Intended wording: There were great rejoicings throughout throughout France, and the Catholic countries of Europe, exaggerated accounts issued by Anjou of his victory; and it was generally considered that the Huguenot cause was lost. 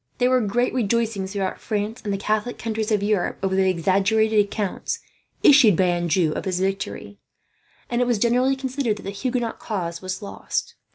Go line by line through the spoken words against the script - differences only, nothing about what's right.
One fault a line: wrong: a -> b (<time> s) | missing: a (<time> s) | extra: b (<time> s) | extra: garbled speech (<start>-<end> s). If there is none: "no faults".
missing: throughout (1.6 s)
extra: over the (3.4 s)